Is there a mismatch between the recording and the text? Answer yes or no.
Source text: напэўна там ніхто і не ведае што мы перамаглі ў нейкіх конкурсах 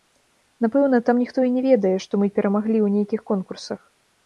no